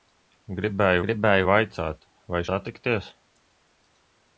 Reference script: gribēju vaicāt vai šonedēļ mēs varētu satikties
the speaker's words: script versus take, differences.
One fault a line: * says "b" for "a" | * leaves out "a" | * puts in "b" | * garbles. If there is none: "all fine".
* puts in "gribēju"
* leaves out "šonedēļ mēs varētu"